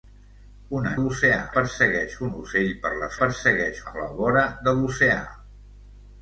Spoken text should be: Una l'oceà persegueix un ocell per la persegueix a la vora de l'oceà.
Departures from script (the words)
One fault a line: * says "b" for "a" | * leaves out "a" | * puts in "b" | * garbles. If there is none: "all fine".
all fine